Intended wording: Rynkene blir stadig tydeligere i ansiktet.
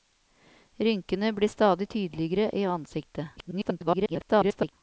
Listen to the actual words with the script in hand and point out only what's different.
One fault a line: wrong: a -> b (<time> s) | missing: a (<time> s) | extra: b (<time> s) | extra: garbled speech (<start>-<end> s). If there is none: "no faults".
extra: garbled speech (3.4-4.7 s)